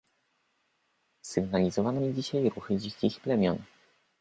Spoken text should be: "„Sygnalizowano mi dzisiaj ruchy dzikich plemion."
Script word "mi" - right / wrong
right